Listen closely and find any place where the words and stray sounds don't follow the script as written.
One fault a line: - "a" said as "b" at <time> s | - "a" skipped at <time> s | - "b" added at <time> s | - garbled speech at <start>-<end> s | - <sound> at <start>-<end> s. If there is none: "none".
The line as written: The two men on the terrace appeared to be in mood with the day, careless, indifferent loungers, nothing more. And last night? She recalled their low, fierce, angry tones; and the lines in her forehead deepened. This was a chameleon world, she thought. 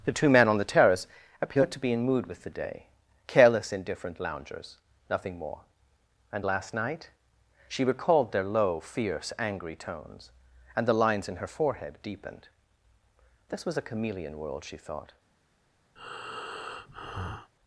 - breath at 16.0-17.5 s